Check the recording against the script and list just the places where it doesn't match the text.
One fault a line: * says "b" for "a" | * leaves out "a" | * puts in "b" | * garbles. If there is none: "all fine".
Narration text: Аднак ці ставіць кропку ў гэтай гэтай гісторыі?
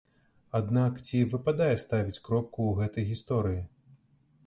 * puts in "выпадае"
* leaves out "гэтай"